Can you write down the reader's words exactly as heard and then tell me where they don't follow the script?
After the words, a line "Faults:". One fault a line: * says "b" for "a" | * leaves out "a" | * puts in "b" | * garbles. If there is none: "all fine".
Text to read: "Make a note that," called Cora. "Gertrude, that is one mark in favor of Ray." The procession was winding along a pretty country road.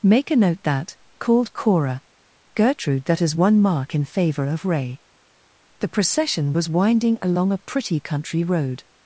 "Make a note that," called Cora. "Gertrude, that is one mark in favor of Ray." The procession was winding along a pretty country road.
Faults:
all fine